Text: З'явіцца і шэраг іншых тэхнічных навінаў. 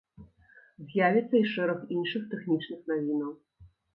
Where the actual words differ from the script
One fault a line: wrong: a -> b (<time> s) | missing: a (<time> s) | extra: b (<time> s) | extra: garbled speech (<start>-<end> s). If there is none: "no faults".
no faults